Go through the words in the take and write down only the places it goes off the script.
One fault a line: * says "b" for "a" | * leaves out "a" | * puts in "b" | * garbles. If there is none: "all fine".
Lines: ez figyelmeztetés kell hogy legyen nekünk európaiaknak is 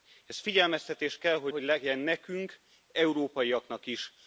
* puts in "hogy"